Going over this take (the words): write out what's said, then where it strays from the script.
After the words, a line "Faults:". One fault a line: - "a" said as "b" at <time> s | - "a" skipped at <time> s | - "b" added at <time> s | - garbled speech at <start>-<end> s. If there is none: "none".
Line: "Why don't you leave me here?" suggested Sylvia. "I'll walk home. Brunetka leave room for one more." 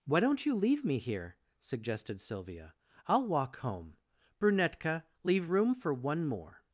"Why don't you leave me here?" suggested Sylvia. "I'll walk home. Brunetka leave room for one more."
Faults:
none